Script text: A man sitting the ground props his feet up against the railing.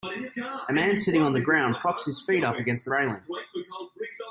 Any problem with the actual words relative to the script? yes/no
yes